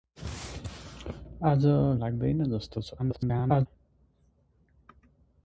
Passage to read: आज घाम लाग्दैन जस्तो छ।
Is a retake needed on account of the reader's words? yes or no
yes